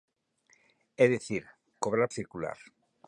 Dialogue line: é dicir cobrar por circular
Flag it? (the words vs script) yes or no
yes